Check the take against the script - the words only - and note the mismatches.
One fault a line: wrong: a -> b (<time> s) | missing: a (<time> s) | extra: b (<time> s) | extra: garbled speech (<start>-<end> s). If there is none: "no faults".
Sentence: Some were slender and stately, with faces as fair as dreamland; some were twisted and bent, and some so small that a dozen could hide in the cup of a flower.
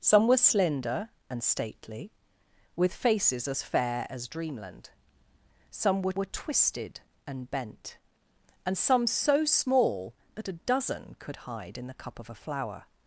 extra: were (6.1 s)